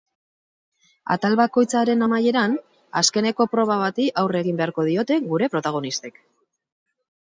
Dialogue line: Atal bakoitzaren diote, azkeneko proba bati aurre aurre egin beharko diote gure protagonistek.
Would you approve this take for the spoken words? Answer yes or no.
no